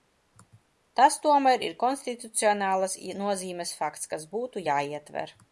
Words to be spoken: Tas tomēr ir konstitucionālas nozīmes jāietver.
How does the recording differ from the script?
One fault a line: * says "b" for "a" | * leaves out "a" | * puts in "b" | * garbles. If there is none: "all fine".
* puts in "fakts kas būtu"